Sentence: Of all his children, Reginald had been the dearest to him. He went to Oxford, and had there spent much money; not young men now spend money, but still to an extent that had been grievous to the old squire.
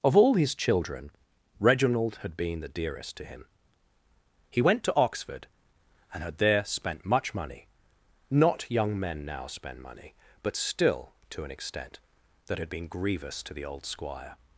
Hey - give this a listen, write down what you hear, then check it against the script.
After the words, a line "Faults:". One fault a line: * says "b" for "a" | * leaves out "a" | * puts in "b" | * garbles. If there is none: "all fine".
Of all his children, Reginald had been the dearest to him. He went to Oxford, and had there spent much money; not young men now spend money, but still to an extent that had been grievous to the old squire.
Faults:
all fine